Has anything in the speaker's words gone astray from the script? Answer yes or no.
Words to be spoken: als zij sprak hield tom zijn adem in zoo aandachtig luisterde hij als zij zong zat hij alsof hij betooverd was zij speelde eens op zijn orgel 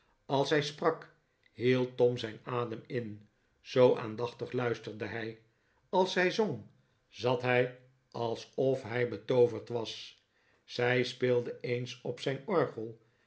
no